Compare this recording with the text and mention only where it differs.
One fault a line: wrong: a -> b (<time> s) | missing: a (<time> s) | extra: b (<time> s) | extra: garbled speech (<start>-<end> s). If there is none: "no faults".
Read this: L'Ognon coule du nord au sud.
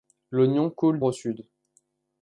missing: du nord (1.0 s)